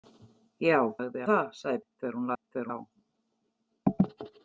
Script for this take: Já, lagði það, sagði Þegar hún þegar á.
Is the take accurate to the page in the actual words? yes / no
yes